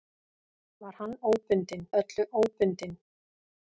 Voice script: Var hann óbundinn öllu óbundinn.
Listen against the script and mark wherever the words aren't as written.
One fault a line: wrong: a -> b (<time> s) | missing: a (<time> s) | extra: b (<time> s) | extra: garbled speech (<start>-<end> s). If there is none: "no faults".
no faults